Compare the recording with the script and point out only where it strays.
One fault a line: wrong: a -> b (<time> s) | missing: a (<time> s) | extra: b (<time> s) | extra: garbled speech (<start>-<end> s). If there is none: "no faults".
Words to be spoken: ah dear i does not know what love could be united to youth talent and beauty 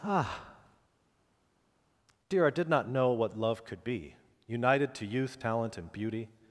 wrong: does -> did (2.5 s)